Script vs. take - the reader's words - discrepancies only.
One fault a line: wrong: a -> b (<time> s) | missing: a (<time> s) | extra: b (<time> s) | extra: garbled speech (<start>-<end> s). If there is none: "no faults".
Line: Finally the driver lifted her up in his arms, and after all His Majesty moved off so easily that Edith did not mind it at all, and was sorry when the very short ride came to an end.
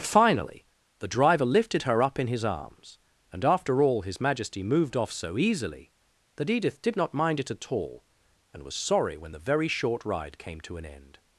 no faults